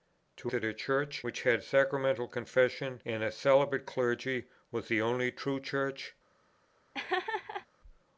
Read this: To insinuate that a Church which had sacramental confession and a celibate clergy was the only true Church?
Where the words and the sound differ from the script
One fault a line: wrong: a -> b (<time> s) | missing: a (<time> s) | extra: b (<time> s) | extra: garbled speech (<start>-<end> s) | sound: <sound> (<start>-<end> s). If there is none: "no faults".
missing: insinuate (0.5 s)
sound: laugh (6.9-7.7 s)